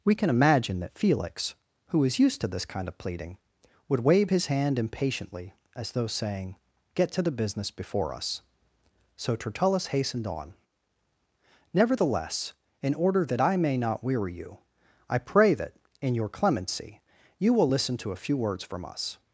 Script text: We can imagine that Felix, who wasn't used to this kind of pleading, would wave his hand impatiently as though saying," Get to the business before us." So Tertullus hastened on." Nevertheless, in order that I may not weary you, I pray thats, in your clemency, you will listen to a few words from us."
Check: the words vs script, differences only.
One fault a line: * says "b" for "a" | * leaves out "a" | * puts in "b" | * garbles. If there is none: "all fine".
* says "was" for "wasn't"
* says "that" for "thats"